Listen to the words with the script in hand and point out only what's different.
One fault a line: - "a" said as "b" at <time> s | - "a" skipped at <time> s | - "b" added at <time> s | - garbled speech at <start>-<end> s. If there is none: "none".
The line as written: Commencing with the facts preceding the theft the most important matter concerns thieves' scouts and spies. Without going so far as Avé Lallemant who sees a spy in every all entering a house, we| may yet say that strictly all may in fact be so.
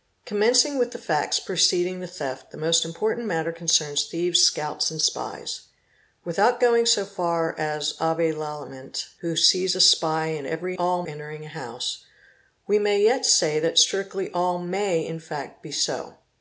none